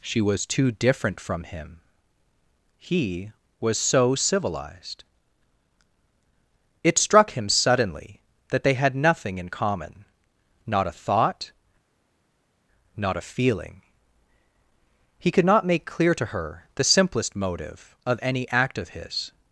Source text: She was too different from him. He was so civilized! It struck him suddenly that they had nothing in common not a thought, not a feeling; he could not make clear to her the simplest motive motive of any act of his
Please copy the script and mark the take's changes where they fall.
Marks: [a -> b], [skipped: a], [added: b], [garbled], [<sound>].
She was too different from him. He was so civilized! It struck him suddenly that they had nothing in common not a thought, not a feeling; he could not make clear to her the simplest motive [skipped: motive] of any act of his